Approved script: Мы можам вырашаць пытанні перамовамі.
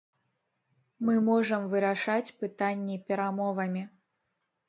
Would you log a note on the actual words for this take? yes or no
no